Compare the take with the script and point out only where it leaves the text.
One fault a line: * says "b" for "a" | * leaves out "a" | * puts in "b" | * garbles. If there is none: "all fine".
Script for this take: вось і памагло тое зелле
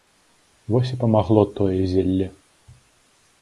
all fine